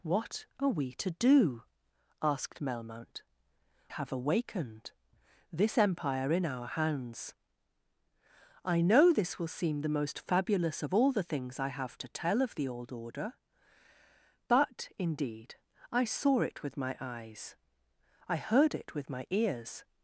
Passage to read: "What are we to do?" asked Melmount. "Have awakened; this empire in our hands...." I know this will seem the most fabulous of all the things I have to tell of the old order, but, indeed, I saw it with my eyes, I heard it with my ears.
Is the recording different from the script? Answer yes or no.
no